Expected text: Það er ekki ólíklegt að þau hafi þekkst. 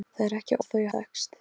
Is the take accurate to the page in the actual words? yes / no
no